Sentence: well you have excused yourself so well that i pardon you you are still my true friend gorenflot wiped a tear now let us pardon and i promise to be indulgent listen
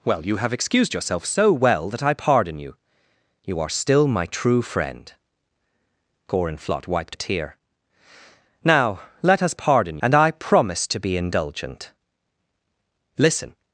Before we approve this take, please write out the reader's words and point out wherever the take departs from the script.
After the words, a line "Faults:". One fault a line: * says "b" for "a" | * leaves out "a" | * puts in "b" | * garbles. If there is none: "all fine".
well you have excused yourself so well that i pardon you you are still my true friend gorenflot wiped a tear now let us pardon and i promise to be indulgent listen
Faults:
all fine